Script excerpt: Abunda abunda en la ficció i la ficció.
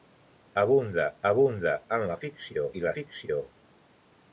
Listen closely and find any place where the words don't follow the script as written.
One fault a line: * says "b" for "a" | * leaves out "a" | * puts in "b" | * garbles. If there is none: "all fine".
all fine